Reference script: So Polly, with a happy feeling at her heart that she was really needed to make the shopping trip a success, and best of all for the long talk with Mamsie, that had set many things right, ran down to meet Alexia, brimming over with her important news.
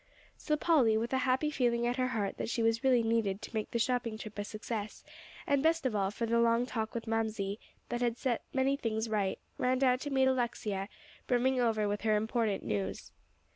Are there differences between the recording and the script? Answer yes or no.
no